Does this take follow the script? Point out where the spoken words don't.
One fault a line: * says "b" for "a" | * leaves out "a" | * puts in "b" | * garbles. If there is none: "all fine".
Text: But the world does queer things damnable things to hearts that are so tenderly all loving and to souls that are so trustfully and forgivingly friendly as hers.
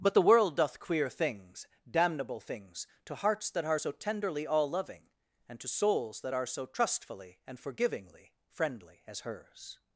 * says "doth" for "does"